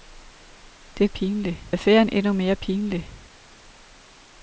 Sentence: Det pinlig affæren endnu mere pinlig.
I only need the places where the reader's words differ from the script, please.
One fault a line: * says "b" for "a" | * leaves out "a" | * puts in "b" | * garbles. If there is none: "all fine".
all fine